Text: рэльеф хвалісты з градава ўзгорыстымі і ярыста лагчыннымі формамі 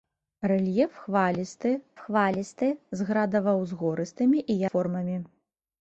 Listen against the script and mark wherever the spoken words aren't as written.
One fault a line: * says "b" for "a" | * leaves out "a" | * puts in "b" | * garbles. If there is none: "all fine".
* puts in "хвалісты"
* leaves out "ярыста лагчыннымі"